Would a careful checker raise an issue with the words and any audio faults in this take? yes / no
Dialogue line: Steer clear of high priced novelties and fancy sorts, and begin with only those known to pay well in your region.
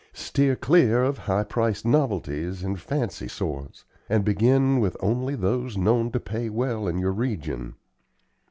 no